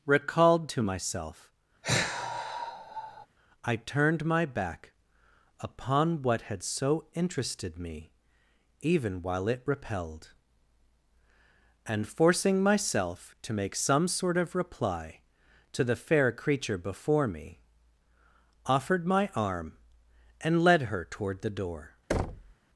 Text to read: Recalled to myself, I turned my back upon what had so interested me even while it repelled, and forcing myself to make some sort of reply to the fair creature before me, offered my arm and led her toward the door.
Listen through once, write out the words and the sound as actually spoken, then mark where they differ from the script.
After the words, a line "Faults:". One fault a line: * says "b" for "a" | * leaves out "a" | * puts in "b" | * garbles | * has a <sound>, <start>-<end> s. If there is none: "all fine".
Recalled to myself, I turned my back upon what had so interested me even while it repelled, and forcing myself to make some sort of reply to the fair creature before me, offered my arm and led her toward the door.
Faults:
* has a sigh, 1.8-3.3 s
* has a thud, 22.1-22.5 s